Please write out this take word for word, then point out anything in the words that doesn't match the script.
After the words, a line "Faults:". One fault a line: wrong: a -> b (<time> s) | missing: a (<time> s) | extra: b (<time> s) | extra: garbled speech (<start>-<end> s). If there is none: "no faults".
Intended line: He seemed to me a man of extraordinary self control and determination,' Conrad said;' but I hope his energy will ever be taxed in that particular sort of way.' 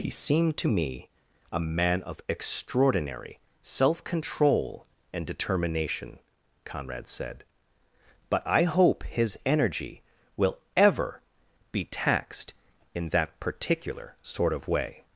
He seemed to me a man of extraordinary self control and determination,' Conrad said;' but I hope his energy will ever be taxed in that particular sort of way.'
Faults:
no faults